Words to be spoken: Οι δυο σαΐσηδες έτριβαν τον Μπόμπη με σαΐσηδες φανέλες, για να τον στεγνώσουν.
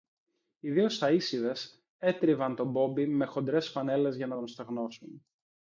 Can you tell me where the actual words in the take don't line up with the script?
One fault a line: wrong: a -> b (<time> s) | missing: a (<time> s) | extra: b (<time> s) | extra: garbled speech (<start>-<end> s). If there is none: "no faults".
wrong: σαΐσηδες -> χοντρές (3.2 s)